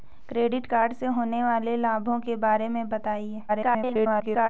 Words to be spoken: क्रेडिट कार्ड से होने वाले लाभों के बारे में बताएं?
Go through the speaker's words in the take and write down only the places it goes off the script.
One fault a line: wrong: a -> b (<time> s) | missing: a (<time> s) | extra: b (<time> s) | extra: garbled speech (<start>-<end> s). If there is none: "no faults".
extra: garbled speech (3.5-4.5 s)